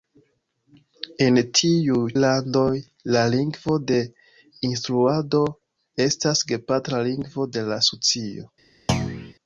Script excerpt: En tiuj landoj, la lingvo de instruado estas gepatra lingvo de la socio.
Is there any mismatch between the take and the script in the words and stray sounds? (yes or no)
yes